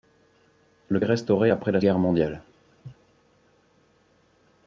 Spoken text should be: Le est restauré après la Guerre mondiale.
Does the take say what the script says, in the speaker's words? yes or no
yes